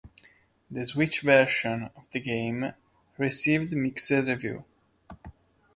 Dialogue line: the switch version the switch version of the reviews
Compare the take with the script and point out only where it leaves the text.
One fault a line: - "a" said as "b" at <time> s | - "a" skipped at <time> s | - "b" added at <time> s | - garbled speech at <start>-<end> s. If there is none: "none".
- "of" added at 1.9 s
- "switch version of the" said as "game received mixed" at 2.2 s